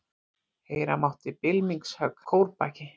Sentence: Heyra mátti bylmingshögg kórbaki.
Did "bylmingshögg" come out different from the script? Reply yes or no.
no